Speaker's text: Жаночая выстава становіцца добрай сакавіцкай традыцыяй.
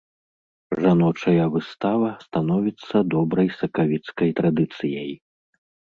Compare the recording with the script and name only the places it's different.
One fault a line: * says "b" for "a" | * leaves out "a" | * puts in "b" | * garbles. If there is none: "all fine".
all fine